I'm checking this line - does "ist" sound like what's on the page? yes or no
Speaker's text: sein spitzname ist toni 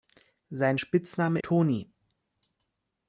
no